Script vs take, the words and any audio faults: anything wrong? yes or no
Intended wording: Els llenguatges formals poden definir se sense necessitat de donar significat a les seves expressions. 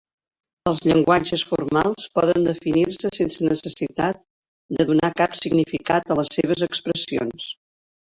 yes